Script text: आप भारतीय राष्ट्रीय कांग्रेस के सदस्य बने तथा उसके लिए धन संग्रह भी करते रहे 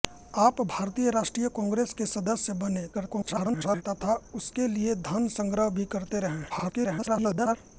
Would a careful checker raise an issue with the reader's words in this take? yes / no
yes